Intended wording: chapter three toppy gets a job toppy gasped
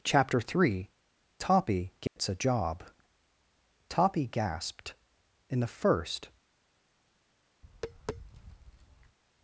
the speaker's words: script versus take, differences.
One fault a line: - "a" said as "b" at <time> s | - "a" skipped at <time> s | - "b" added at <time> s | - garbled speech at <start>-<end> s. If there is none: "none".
- "in the first" added at 5.5 s